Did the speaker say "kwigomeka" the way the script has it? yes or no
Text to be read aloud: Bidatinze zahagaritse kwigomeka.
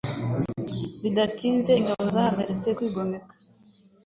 yes